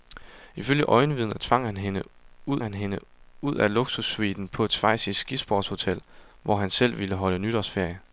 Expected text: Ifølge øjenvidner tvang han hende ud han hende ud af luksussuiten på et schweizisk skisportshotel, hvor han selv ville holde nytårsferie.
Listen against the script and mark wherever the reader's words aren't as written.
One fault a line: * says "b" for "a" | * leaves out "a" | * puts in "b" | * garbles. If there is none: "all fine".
all fine